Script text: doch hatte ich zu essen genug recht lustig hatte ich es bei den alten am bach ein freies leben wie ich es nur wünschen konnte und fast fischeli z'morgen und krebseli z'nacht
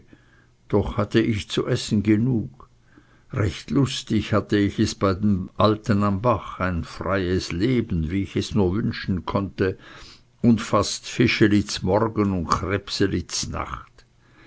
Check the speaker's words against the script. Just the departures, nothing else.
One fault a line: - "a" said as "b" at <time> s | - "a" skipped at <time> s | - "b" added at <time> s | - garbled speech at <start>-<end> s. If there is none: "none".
none